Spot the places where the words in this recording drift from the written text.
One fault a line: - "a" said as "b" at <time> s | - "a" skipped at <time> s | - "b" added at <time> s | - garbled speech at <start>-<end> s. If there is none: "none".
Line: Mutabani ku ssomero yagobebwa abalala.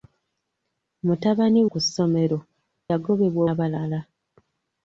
none